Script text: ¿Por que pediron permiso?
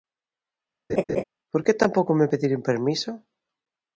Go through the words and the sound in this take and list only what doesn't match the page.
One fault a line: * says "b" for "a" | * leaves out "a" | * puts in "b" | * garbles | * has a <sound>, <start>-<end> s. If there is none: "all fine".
* has a laugh, 0.9-1.2 s
* puts in "tampouco me"